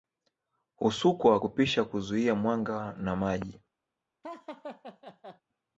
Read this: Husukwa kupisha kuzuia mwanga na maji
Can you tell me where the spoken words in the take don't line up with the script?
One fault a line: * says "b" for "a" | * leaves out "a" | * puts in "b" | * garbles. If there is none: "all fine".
all fine